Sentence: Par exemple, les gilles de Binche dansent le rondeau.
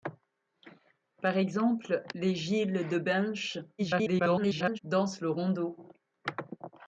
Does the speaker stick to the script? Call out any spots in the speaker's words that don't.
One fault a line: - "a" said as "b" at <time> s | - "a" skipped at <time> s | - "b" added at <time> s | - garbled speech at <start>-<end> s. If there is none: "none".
- garbled speech at 3.8-4.8 s